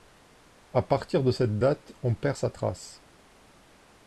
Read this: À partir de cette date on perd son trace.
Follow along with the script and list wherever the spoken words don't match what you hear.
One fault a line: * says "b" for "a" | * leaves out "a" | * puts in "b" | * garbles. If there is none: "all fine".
* says "sa" for "son"